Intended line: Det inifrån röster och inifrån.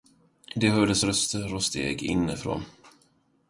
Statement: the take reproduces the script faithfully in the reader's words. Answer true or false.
false